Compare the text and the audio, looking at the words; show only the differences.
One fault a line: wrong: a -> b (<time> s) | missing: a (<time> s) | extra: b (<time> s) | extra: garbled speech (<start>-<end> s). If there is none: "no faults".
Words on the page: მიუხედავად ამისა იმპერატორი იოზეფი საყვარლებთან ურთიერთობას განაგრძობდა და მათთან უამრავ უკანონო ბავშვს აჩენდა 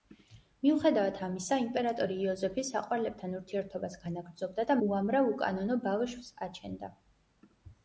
missing: მათთან (4.8 s)